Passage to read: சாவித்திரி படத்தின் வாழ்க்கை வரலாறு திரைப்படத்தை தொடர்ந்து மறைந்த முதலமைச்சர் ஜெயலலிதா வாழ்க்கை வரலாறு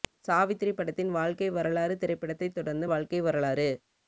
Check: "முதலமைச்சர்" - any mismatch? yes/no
yes